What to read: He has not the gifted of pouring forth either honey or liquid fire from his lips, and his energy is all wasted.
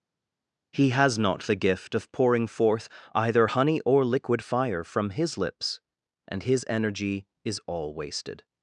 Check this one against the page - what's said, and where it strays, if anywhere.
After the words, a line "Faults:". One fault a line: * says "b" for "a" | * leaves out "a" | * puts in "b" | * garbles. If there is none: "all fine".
He has not the gift of pouring forth either honey or liquid fire from his lips, and his energy is all wasted.
Faults:
* says "gift" for "gifted"